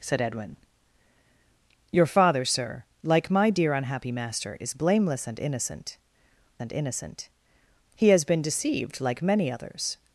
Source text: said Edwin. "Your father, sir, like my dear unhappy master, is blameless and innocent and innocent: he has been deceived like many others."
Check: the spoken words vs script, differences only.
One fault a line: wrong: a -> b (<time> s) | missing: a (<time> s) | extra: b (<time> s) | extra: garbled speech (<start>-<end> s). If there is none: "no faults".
no faults